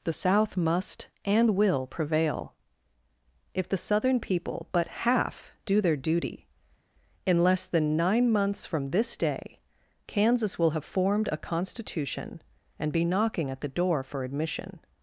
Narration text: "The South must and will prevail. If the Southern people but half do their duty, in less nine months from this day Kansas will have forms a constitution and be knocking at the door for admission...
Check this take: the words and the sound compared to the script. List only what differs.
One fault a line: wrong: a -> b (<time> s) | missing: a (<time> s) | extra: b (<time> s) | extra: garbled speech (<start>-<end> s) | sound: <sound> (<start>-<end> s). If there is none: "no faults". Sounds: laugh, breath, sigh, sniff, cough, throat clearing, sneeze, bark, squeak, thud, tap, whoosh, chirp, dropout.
extra: than (7.7 s)
wrong: forms -> formed (10.8 s)